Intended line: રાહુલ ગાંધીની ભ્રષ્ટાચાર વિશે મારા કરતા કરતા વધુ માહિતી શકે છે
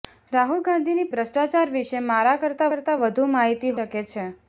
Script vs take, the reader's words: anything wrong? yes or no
no